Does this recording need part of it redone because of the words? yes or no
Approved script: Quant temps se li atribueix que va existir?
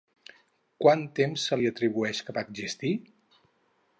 no